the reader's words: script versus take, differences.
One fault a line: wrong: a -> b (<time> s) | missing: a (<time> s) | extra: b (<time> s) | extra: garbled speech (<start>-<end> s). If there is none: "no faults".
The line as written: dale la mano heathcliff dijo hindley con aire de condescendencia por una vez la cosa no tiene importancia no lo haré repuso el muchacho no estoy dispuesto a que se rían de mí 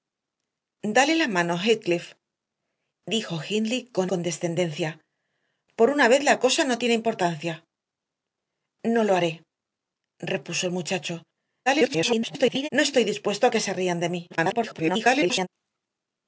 missing: aire de (4.1 s)
extra: garbled speech (11.7-12.7 s)
extra: garbled speech (14.3-15.5 s)